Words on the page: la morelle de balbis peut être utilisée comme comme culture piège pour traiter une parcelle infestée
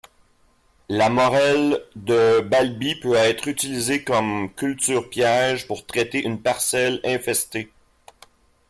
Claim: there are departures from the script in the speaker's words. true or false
true